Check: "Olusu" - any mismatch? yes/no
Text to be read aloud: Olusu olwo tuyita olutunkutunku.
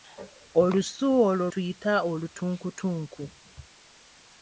no